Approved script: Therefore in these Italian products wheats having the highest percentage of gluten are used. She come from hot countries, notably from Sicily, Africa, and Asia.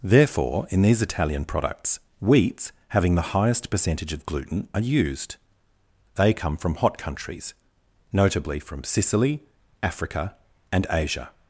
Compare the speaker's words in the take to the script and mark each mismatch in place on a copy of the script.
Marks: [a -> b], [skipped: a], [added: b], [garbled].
Therefore in these Italian products wheats having the highest percentage of gluten are used. [She -> They] come from hot countries, notably from Sicily, Africa, and Asia.